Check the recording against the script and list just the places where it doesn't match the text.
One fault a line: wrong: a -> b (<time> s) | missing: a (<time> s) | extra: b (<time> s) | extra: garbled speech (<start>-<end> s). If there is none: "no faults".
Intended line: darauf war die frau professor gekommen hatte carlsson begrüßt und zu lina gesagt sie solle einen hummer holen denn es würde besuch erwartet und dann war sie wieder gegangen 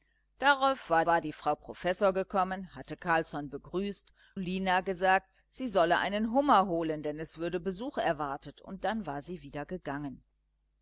extra: war (1.1 s)
missing: und zu (4.1 s)